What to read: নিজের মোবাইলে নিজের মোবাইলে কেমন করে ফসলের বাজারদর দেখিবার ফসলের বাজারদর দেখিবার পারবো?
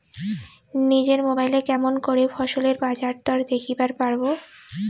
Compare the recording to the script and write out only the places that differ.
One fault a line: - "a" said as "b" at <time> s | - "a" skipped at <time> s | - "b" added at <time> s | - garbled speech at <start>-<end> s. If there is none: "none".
- "নিজের মোবাইলে" skipped at 1.6 s
- "ফসলের বাজারদর দেখিবার" skipped at 3.9 s